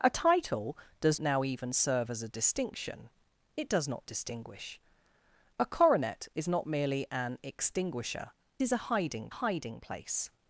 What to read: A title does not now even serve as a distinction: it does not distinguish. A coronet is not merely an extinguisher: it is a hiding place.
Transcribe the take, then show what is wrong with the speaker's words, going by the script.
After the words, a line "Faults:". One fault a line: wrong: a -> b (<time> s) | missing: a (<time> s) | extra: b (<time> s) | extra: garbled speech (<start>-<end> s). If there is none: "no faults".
A title does now even serve as a distinction: it does not distinguish. A coronet is not merely an extinguisher: is a hiding hiding place.
Faults:
missing: not (1.2 s)
missing: it (8.3 s)
extra: hiding (9.3 s)